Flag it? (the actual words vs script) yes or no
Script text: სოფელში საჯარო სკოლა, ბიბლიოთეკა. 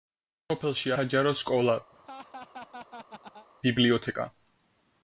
no